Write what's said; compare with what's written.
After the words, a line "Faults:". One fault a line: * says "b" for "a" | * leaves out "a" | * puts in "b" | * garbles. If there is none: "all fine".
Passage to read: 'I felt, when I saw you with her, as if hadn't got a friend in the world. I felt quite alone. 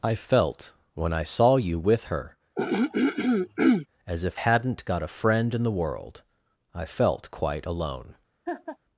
'I felt, when I saw you with her, as if hadn't got a friend in the world. I felt quite alone.
Faults:
all fine